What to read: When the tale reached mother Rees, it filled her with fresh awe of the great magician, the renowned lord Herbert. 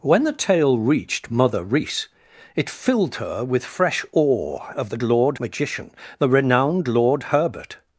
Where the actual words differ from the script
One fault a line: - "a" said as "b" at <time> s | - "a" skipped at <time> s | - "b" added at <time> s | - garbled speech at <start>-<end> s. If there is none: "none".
- "great" said as "lord" at 5.0 s